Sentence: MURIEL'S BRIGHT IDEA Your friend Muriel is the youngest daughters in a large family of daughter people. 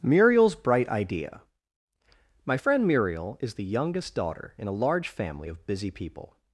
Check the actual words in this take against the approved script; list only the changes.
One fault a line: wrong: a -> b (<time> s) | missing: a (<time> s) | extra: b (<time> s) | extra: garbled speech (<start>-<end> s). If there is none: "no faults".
wrong: Your -> My (2.4 s)
wrong: daughters -> daughter (4.1 s)
wrong: daughter -> busy (5.6 s)